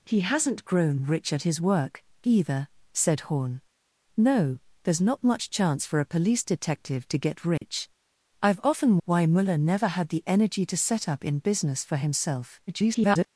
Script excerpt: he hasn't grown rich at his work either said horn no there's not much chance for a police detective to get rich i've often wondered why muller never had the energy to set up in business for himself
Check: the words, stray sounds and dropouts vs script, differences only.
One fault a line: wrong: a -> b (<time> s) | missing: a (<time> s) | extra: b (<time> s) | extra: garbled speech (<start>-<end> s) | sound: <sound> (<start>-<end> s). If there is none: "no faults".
sound: dropout (7.6-7.6 s)
missing: wondered (9.0 s)
extra: garbled speech (12.7-13.3 s)